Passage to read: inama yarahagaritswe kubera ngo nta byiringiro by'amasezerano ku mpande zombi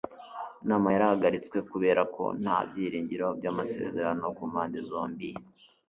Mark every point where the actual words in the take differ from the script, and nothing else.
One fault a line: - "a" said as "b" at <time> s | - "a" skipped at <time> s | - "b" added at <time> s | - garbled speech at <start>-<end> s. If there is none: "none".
- "ngo" said as "ko" at 2.1 s